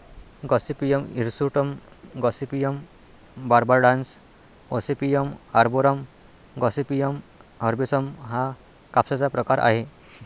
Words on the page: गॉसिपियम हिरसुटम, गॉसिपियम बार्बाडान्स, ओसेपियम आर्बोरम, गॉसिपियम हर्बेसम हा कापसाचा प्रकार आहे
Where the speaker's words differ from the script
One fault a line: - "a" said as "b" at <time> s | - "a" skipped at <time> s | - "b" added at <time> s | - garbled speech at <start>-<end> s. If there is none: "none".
none